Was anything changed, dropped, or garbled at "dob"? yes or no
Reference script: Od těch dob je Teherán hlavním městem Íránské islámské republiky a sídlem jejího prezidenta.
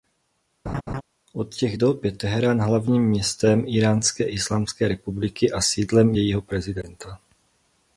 no